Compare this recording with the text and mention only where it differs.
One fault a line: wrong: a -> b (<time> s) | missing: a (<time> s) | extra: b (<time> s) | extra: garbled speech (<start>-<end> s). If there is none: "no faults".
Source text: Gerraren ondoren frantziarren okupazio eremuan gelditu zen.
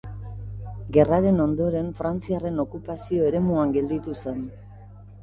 no faults